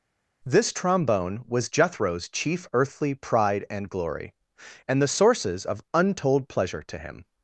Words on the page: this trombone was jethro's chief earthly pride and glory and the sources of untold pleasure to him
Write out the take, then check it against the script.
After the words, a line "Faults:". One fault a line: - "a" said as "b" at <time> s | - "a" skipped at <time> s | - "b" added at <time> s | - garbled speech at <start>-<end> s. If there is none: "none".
this trombone was jethro's chief earthly pride and glory and the sources of untold pleasure to him
Faults:
none